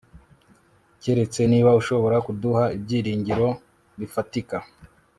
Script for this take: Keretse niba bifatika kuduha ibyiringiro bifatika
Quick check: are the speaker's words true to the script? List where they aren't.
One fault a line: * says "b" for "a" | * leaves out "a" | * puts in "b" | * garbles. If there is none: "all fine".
* says "ushobora" for "bifatika"